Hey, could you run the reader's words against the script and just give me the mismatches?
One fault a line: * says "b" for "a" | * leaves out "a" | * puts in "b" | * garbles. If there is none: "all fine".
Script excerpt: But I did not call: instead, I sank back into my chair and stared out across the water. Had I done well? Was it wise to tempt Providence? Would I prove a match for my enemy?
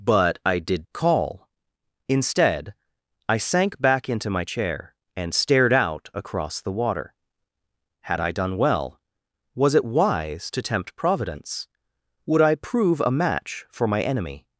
* leaves out "not"